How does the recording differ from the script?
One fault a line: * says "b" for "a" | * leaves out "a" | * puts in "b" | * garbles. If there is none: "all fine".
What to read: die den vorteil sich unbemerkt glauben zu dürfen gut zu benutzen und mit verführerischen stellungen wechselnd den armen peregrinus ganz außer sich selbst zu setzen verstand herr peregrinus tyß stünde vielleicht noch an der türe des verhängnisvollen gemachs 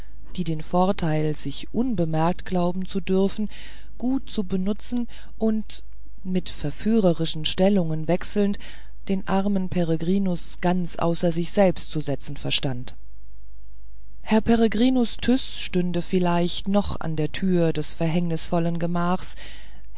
all fine